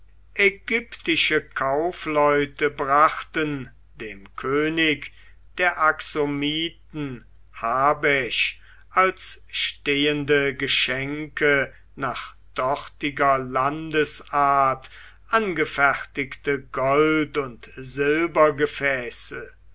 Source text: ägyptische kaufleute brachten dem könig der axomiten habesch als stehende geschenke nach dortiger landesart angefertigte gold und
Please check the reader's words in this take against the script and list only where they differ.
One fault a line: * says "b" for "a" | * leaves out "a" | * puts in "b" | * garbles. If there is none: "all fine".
all fine